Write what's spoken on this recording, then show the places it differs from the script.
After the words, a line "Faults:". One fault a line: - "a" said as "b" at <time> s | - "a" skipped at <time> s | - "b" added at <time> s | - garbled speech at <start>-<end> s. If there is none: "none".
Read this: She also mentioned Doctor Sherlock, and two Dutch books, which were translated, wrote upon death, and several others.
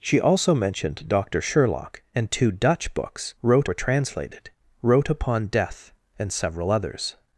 She also mentioned Doctor Sherlock, and two Dutch books, wrote were translated, wrote upon death, and several others.
Faults:
- "which" said as "wrote" at 3.4 s